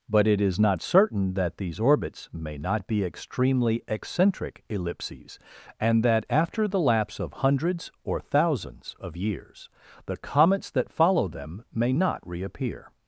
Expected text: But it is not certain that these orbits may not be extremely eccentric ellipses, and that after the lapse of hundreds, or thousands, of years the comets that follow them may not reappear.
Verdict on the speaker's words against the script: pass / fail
pass